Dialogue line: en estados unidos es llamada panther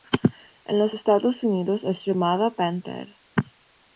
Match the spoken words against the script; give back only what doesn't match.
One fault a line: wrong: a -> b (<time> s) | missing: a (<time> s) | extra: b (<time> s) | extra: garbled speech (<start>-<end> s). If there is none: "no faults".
extra: los (0.8 s)